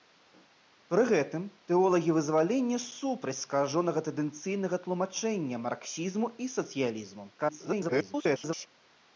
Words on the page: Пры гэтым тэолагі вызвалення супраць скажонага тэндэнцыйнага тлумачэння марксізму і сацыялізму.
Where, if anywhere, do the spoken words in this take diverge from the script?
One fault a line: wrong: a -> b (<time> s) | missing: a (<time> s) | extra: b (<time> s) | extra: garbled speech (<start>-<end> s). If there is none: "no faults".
extra: garbled speech (7.4-8.7 s)